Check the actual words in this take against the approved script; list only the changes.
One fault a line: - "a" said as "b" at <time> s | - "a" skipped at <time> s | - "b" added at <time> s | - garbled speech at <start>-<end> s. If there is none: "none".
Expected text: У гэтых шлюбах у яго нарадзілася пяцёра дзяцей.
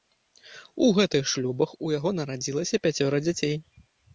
none